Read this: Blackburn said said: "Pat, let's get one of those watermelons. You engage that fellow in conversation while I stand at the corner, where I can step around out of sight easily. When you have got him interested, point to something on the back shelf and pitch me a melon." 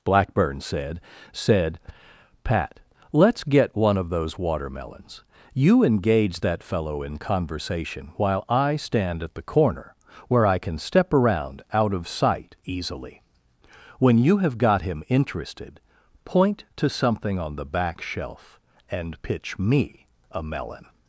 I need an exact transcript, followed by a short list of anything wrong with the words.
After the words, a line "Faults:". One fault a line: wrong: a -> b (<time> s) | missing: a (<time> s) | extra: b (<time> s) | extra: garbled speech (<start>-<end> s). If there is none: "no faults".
Blackburn said said: "Pat, let's get one of those watermelons. You engage that fellow in conversation while I stand at the corner, where I can step around out of sight easily. When you have got him interested, point to something on the back shelf and pitch me a melon."
Faults:
no faults